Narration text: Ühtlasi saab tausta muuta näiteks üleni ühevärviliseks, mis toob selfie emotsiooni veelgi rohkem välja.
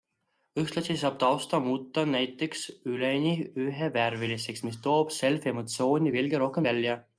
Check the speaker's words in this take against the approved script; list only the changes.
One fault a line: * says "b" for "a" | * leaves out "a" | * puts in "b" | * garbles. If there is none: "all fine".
all fine